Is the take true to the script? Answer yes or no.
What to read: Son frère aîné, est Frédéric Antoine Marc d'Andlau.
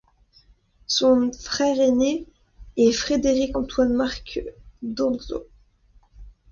yes